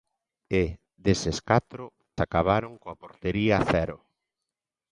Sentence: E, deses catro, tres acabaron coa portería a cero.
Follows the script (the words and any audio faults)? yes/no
no